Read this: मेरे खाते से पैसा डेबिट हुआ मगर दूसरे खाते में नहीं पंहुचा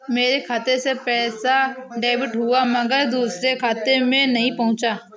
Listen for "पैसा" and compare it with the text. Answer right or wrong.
right